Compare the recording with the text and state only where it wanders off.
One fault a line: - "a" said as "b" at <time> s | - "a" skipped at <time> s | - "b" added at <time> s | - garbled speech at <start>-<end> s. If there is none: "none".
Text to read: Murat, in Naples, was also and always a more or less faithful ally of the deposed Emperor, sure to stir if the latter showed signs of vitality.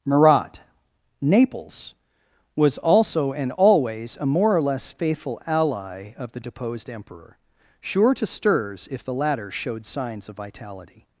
- "in" skipped at 0.6 s
- "stir" said as "stirs" at 8.2 s